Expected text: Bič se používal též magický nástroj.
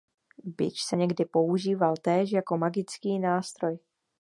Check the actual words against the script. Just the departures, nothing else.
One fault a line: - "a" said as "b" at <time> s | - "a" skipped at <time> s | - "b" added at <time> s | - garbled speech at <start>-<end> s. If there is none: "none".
- "někdy" added at 0.9 s
- "jako" added at 2.3 s